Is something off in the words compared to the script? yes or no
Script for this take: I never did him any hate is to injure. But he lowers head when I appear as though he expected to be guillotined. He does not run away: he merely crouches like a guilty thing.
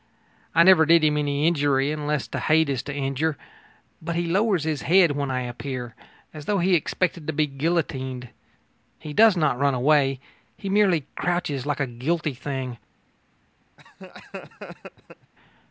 yes